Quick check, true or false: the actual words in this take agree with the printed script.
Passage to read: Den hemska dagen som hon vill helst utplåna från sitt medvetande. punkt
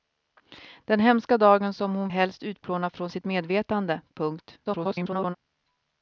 false